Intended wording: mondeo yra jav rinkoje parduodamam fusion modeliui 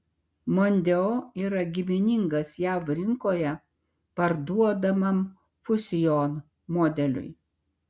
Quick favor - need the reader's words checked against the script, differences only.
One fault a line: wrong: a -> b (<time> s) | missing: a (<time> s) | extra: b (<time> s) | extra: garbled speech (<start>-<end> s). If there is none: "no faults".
extra: giminingas (1.8 s)